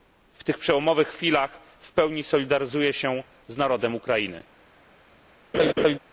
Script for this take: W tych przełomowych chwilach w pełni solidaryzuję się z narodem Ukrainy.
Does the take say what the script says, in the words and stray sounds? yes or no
no